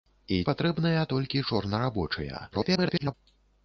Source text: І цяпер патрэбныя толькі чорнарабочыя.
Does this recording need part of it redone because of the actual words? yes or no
yes